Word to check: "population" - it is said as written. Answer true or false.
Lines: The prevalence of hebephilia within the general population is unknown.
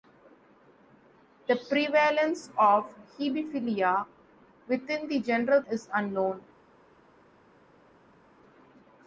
false